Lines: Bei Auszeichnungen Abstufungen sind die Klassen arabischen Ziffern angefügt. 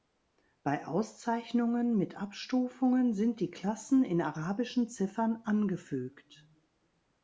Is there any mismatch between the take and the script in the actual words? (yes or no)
yes